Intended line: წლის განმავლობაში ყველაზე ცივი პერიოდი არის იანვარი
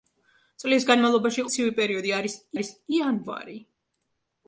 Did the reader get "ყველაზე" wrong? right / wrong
wrong